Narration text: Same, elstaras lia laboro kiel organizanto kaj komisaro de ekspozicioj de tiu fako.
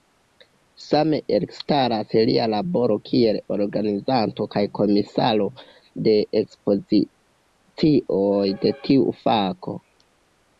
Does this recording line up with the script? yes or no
yes